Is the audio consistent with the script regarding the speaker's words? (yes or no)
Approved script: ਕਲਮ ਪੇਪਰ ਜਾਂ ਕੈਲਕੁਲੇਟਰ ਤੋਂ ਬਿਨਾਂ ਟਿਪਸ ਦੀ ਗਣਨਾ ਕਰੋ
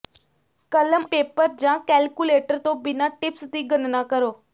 yes